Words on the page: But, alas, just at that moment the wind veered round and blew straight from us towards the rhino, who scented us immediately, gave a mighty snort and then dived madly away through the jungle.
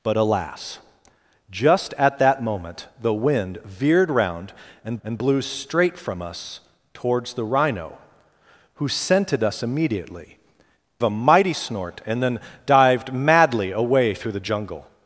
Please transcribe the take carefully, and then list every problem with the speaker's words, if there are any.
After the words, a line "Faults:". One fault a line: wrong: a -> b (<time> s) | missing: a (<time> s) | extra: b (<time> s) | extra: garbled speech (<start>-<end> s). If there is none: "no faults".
But, alas, just at that moment the wind veered round and and blew straight from us towards the rhino, who scented us immediately, a mighty snort and then dived madly away through the jungle.
Faults:
extra: and (5.0 s)
missing: gave (10.4 s)